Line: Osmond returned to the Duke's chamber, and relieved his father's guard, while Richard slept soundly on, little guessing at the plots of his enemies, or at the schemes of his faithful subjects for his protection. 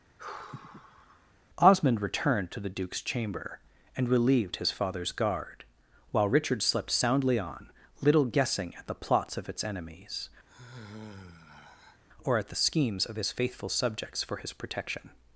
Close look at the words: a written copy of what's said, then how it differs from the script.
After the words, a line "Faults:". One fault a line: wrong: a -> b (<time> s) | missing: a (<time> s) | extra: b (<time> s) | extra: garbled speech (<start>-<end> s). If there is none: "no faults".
Osmond returned to the Duke's chamber, and relieved his father's guard, while Richard slept soundly on, little guessing at the plots of its enemies, or at the schemes of his faithful subjects for his protection.
Faults:
wrong: his -> its (9.5 s)